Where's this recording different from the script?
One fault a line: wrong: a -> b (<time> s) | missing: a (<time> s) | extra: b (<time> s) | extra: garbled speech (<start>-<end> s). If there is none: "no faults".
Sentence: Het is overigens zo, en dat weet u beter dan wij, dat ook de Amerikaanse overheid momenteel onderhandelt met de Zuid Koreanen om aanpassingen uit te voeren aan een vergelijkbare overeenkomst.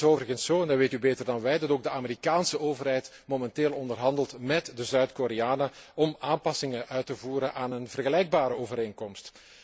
no faults